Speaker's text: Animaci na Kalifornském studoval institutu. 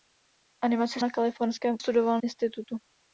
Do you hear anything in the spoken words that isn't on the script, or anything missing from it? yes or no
no